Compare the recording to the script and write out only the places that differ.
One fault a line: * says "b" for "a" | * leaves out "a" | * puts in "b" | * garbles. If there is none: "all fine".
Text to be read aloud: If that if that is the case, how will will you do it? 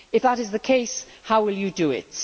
* leaves out "if that"
* leaves out "will"